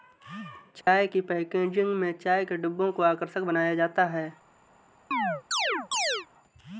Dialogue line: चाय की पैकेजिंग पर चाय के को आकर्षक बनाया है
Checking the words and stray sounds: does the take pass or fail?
fail